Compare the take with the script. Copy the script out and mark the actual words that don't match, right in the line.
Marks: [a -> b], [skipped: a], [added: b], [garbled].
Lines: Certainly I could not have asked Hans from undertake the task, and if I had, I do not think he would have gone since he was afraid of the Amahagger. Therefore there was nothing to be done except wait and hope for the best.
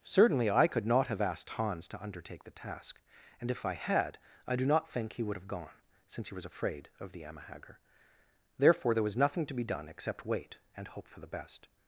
Certainly I could not have asked Hans [from -> to] undertake the task, and if I had, I do not think he would have gone since he was afraid of the Amahagger. Therefore there was nothing to be done except wait and hope for the best.